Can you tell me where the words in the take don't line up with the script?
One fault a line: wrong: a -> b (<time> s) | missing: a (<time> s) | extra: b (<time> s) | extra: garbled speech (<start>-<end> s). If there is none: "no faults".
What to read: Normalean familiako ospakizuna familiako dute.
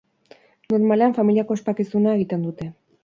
wrong: familiako -> egiten (2.2 s)